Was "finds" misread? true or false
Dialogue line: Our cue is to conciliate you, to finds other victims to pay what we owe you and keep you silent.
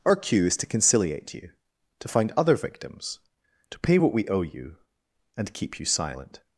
true